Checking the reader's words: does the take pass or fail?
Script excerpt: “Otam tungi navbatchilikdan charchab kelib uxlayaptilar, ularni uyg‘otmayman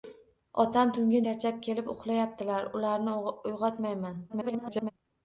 fail